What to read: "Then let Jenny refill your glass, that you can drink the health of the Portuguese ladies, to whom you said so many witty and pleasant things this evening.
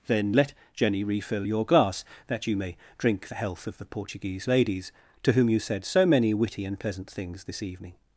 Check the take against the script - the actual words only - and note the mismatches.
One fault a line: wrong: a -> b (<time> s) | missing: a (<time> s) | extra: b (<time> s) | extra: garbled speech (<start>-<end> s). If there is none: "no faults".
wrong: can -> may (2.5 s)